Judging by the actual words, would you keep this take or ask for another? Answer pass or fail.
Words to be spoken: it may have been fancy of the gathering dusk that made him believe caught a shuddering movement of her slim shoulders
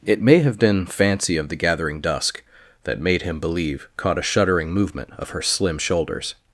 pass